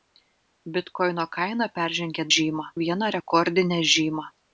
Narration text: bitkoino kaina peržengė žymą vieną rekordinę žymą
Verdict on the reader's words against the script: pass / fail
pass